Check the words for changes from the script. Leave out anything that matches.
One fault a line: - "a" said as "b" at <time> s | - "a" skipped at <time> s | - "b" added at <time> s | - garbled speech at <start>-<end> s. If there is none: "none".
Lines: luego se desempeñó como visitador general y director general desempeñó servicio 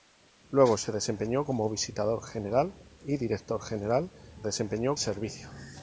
none